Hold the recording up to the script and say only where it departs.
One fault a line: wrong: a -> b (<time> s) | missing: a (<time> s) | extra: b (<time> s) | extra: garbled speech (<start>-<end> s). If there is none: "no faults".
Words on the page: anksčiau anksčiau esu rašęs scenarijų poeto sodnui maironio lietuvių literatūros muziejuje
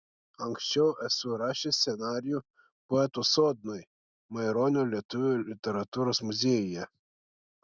missing: anksčiau (0.8 s)